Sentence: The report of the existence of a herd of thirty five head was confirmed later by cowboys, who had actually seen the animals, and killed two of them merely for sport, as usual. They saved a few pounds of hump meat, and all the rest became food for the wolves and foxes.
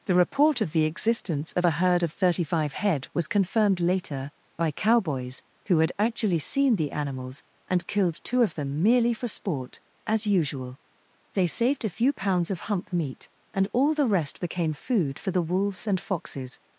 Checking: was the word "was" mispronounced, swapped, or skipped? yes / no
no